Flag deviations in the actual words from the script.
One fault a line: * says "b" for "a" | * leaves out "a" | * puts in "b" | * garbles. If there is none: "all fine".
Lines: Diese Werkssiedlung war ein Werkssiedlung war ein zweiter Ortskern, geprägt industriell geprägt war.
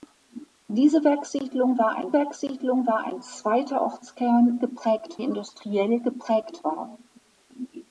all fine